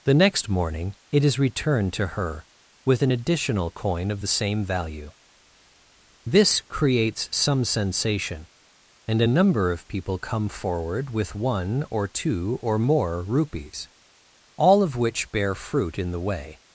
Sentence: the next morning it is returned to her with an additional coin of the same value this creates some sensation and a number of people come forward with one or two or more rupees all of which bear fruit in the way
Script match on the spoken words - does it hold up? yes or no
yes